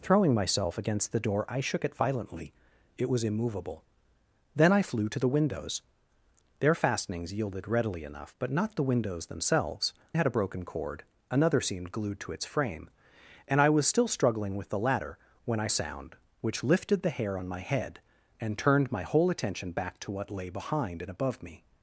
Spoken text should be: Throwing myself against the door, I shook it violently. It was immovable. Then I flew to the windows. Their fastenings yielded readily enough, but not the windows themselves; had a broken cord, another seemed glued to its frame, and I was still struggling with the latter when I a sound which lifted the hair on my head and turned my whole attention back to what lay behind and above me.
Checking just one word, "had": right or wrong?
right